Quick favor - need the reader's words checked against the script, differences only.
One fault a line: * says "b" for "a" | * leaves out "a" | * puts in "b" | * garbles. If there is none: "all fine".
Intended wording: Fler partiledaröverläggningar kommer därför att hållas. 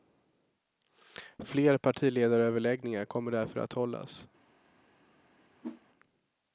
all fine